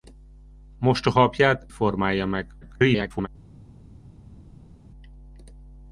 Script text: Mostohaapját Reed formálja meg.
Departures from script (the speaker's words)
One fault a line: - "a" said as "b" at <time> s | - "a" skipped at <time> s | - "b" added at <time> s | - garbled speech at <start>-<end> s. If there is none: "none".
- "Reed" skipped at 1.6 s
- garbled speech at 2.6-3.3 s